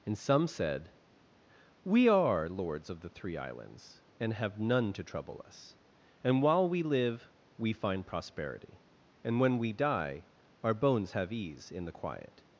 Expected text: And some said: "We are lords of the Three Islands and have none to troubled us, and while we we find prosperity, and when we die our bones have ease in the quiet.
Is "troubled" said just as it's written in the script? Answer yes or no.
no